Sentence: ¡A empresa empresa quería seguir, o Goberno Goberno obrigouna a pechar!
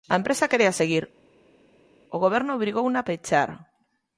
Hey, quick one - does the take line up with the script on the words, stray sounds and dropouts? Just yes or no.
no